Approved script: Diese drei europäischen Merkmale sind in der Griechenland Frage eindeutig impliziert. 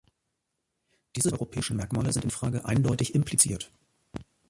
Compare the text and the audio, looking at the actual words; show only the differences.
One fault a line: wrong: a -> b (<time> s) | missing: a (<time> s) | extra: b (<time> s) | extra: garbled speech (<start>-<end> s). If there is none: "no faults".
missing: drei (1.3 s)
missing: der Griechenland (2.3 s)